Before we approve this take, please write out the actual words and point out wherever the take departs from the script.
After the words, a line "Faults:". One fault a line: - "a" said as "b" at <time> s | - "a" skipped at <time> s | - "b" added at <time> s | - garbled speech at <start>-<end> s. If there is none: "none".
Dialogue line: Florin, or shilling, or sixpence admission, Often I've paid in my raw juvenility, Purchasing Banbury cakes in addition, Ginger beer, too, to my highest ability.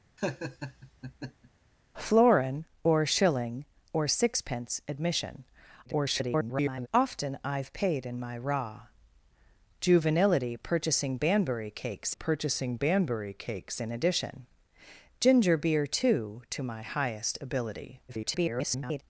Florin, or shilling, or sixpence admission, [garbled] Often I've paid in my raw juvenility, Purchasing Banbury cakes Purchasing Banbury cakes in addition, Ginger beer, too, to my highest ability. [garbled]
Faults:
- garbled speech at 5.9-6.9 s
- "Purchasing Banbury cakes" added at 12.1 s
- garbled speech at 18.1-19.0 s